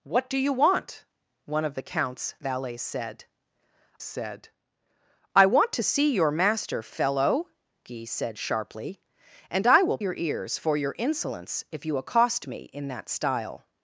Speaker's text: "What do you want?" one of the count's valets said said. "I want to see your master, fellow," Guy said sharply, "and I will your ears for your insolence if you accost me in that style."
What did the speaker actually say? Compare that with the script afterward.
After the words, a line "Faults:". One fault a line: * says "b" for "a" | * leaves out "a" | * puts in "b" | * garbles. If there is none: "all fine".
"What do you want?" one of the count's valets said said. "I want to see your master, fellow," Guy said sharply, "and I will your ears for your insolence if you accost me in that style."
Faults:
all fine